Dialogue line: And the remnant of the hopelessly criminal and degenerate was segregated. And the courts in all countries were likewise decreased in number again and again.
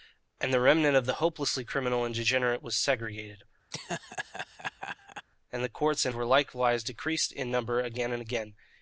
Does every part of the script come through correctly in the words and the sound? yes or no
no